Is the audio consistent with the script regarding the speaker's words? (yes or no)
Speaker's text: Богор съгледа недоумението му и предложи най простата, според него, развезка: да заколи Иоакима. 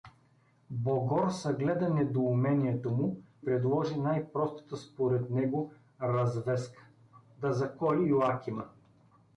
no